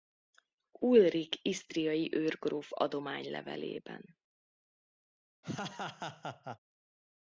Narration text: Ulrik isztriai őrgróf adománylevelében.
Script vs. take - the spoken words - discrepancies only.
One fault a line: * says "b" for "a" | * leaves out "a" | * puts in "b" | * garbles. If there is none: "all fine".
all fine